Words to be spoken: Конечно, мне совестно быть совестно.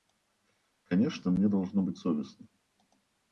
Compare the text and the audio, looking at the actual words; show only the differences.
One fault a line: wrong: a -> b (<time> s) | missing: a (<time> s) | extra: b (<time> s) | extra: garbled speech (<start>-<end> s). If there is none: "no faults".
wrong: совестно -> должно (1.5 s)